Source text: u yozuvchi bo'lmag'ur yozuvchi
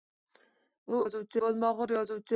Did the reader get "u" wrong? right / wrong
right